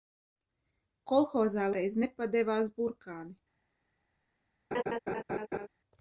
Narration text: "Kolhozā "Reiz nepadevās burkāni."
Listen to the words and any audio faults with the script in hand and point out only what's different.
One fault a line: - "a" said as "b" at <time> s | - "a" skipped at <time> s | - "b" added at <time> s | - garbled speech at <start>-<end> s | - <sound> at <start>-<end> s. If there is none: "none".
- laugh at 4.7-5.7 s